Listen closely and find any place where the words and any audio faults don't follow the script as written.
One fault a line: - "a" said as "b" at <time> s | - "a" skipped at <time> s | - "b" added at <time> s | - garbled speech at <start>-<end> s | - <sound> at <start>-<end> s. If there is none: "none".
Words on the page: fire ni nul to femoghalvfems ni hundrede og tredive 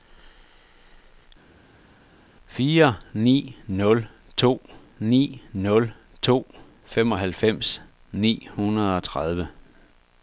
- "ni nul to" added at 5.0 s